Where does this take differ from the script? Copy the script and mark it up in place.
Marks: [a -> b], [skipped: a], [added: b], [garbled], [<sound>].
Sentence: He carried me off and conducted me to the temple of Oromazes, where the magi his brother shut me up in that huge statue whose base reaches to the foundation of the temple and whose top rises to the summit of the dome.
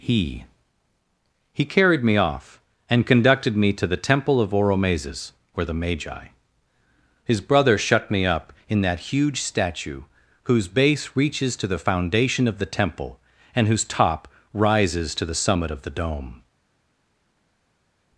He [added: he] carried me off and conducted me to the temple of Oromazes, where the magi his brother shut me up in that huge statue whose base reaches to the foundation of the temple and whose top rises to the summit of the dome.